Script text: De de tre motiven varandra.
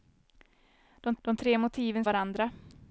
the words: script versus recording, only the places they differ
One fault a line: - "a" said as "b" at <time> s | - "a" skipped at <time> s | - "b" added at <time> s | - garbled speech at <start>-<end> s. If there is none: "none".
none